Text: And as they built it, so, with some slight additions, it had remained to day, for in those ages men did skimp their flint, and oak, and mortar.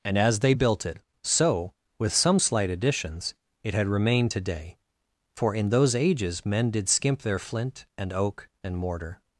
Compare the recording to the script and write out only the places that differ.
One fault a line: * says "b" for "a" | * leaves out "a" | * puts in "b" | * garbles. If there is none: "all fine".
all fine